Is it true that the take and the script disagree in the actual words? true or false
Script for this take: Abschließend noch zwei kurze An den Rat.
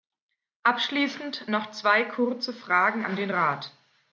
true